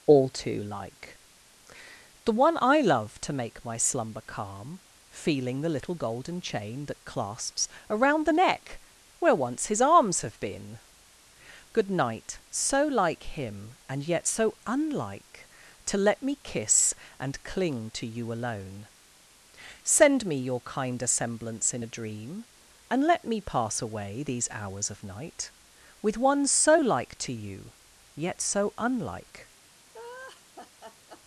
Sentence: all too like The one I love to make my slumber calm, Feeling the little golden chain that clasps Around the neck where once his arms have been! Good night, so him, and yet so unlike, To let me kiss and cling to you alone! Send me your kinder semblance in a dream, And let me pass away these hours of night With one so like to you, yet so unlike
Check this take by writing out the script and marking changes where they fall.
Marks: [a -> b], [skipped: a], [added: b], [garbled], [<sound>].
all too like The one I love to make my slumber calm, Feeling the little golden chain that clasps Around the neck where once his arms have been! Good night, so [added: like] him, and yet so unlike, To let me kiss and cling to you alone! Send me your kinder semblance in a dream, And let me pass away these hours of night With one so like to you, yet so unlike [laugh]